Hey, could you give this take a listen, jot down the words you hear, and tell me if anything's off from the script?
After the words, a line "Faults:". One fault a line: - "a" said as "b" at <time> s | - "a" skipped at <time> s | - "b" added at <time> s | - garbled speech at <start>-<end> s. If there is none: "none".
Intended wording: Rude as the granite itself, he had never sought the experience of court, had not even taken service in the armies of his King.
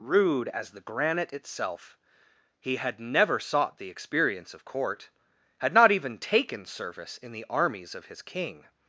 Rude as the granite itself, he had never sought the experience of court, had not even taken service in the armies of his King.
Faults:
none